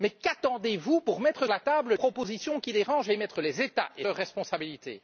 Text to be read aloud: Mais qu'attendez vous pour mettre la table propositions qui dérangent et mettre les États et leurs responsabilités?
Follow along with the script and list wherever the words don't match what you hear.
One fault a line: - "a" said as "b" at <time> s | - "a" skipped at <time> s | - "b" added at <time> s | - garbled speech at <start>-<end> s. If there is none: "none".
none